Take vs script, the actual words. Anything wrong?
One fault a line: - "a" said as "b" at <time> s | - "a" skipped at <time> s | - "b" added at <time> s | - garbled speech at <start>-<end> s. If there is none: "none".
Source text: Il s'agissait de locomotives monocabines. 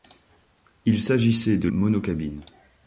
- "locomotives" skipped at 1.7 s